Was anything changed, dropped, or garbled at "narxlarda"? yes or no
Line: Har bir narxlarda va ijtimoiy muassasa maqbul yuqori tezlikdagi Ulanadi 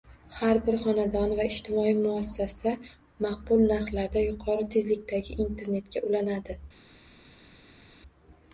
yes